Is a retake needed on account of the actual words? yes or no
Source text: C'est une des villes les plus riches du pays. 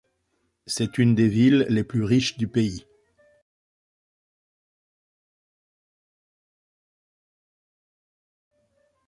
no